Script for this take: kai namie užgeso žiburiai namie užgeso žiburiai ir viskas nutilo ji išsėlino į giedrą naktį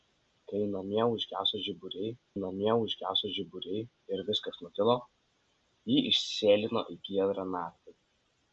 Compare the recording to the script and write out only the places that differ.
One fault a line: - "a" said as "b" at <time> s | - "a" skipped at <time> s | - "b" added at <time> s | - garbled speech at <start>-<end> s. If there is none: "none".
none